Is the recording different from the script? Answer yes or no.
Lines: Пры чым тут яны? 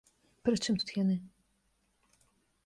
no